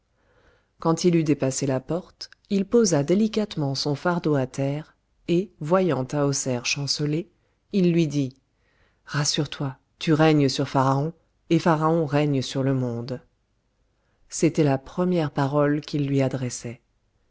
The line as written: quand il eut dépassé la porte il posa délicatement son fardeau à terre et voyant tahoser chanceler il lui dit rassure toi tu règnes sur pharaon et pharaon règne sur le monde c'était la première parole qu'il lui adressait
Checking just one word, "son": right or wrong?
right